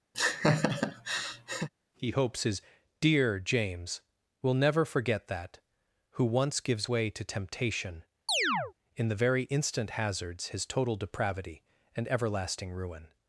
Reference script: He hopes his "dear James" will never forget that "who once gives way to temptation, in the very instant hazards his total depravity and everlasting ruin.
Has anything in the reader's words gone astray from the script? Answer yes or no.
no